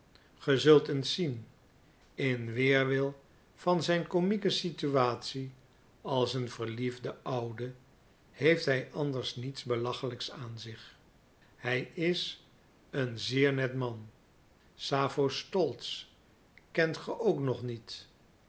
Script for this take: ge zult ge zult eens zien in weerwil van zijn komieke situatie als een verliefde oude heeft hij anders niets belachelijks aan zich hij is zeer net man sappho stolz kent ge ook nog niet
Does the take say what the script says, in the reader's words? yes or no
no